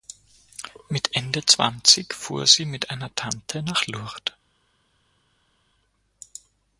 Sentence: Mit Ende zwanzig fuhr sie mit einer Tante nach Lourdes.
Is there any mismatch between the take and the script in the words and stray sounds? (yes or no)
no